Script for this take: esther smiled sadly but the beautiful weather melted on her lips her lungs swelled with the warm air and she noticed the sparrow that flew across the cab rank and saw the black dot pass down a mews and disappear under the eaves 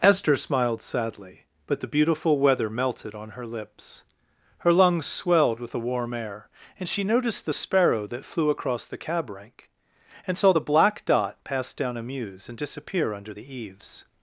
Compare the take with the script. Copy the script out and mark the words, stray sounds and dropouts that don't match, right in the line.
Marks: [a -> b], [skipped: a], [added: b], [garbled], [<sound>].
esther smiled sadly but the beautiful weather melted on her lips her lungs swelled with the warm air and she noticed the sparrow that flew across the cab rank and saw the black dot pass down a mews and disappear under the eaves